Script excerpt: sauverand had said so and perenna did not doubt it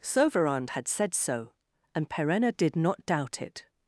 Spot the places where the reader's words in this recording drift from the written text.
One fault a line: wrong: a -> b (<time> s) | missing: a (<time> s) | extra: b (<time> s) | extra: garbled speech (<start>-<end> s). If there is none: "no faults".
no faults